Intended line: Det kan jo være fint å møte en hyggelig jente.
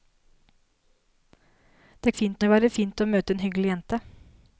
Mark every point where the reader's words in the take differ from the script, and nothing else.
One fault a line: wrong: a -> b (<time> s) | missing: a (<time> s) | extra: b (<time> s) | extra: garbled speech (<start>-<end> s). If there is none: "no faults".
wrong: kan -> fint (2.1 s)